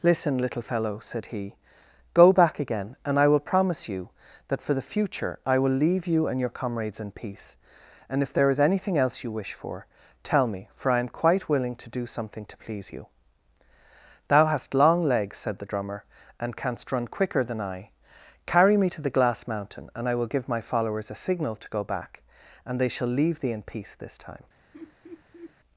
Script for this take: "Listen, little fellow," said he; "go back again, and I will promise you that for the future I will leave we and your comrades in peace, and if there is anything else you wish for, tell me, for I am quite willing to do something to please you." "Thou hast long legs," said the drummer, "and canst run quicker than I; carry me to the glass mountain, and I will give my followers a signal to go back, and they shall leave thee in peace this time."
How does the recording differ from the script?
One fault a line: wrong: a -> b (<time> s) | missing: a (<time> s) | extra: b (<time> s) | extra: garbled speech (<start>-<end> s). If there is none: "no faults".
wrong: we -> you (6.1 s)